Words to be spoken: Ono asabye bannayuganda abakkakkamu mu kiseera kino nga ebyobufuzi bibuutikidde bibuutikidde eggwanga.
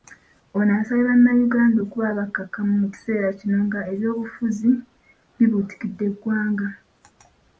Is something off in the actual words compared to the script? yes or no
yes